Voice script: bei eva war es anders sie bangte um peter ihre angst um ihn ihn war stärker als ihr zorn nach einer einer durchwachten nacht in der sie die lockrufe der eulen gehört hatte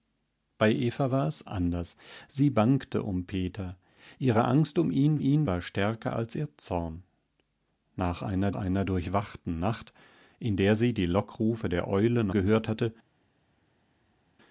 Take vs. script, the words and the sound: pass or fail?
pass